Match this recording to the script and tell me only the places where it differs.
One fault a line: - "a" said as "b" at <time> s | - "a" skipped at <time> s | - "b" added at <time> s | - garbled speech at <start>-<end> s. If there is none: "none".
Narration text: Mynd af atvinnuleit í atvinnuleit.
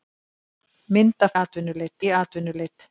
none